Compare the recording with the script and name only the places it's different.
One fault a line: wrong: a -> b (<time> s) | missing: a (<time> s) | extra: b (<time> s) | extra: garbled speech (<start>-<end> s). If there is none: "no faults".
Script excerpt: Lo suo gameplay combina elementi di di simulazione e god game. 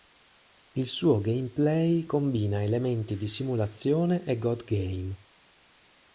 wrong: Lo -> Il (0.7 s)
missing: di (3.3 s)